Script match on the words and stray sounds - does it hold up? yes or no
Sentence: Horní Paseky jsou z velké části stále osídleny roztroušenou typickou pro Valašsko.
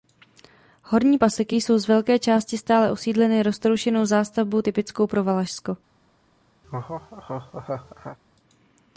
no